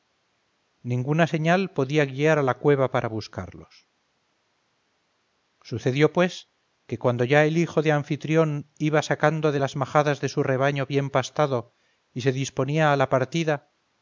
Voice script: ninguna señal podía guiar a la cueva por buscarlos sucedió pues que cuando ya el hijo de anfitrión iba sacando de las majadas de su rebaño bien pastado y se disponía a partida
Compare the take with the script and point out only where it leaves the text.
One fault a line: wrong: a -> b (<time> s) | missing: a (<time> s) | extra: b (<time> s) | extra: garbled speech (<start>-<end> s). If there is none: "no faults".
wrong: por -> para (2.9 s)
extra: la (13.0 s)